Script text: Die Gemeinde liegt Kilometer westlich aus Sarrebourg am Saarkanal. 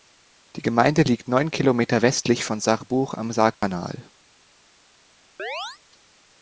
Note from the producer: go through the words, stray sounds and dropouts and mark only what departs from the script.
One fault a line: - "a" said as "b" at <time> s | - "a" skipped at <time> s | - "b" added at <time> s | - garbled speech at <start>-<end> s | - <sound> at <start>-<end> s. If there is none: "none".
- "neun" added at 1.3 s
- "aus" said as "von" at 2.4 s
- dropout at 3.5-3.6 s
- chirp at 5.4-5.8 s